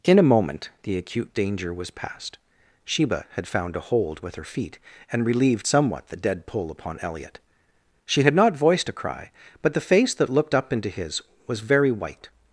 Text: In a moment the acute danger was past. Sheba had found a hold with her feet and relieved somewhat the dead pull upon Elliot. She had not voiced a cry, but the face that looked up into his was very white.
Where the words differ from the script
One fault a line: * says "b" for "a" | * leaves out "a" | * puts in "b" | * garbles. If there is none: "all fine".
all fine